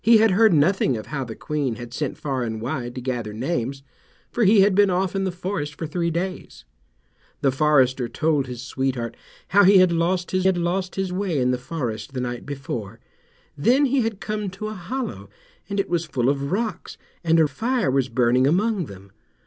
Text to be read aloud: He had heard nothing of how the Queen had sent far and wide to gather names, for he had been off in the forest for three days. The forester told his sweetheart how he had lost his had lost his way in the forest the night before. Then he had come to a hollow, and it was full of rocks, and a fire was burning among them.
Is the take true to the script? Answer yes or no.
yes